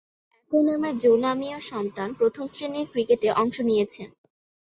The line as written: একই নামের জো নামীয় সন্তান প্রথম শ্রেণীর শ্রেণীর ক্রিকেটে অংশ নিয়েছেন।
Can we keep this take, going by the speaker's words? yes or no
no